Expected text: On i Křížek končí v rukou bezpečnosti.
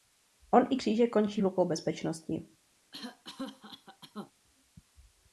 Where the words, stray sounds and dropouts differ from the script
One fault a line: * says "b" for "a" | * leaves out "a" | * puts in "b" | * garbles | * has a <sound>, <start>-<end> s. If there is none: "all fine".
* has a cough, 2.9-4.3 s